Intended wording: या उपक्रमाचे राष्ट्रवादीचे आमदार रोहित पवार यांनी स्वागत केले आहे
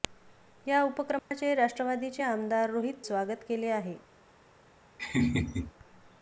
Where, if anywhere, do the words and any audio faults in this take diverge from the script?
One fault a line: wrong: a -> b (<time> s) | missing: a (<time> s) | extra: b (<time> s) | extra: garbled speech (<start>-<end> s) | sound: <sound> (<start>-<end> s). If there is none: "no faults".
sound: dropout (1.2-1.3 s)
missing: पवार यांनी (3.0 s)
sound: laugh (5.0-5.7 s)